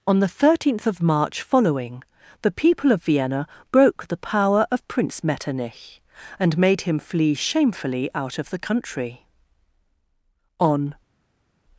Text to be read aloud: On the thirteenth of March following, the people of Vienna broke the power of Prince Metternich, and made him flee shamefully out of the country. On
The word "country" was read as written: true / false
true